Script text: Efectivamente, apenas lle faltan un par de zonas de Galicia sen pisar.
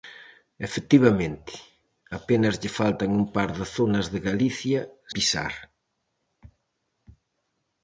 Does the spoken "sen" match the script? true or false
false